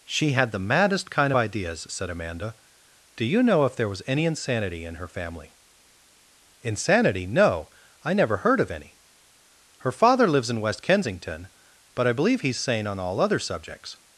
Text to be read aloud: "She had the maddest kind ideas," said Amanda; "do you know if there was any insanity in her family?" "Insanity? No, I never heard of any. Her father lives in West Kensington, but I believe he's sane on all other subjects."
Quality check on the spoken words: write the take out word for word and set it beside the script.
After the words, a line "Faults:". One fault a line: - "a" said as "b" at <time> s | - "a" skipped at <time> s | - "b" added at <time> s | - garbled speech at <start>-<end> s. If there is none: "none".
"She had the maddest kind ideas," said Amanda; "do you know if there was any insanity in her family?" "Insanity? No, I never heard of any. Her father lives in West Kensington, but I believe he's sane on all other subjects."
Faults:
none